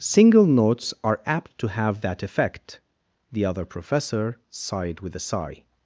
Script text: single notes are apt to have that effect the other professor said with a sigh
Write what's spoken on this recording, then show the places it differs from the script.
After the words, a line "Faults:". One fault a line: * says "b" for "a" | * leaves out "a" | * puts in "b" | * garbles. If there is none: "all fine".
single notes are apt to have that effect the other professor sighed with a sigh
Faults:
* says "sighed" for "said"